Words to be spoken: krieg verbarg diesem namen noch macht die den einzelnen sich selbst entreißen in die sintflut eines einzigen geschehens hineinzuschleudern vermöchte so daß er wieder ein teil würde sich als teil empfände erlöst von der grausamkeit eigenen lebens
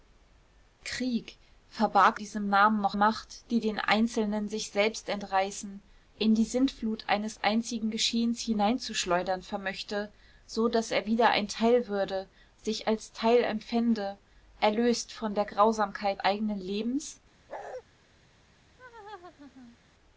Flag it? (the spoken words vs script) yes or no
no